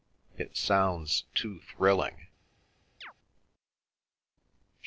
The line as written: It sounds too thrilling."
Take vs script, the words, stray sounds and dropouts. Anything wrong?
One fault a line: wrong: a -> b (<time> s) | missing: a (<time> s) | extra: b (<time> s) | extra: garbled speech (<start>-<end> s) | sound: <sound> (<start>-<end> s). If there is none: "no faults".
sound: chirp (3.0-3.1 s)